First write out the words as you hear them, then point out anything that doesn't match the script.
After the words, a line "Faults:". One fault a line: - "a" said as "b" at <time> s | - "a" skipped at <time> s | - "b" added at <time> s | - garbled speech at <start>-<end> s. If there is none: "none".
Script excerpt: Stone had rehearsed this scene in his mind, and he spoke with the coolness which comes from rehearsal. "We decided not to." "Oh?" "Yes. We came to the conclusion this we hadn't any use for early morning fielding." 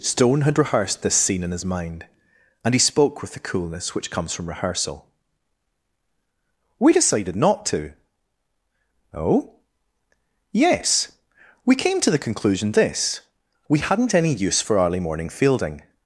Stone had rehearsed this scene in his mind, and he spoke with the coolness which comes from rehearsal. "We decided not to." "Oh?" "Yes. We came to the conclusion this we hadn't any use for early morning fielding."
Faults:
none